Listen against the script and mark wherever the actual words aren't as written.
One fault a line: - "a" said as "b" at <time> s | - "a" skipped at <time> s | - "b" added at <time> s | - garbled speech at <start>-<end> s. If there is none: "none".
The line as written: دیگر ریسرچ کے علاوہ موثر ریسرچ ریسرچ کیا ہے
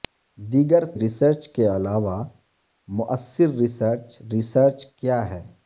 none